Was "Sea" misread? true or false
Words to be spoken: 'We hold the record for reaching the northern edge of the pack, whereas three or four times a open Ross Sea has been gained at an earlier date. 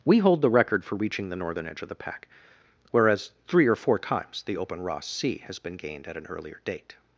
false